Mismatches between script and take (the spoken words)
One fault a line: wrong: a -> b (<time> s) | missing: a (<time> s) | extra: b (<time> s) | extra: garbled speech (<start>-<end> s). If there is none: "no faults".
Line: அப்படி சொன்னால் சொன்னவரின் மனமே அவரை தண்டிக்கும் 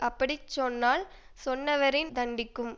missing: மனமே அவரை (2.1 s)